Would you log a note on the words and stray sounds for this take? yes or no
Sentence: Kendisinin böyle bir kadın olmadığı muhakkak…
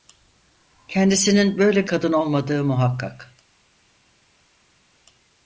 yes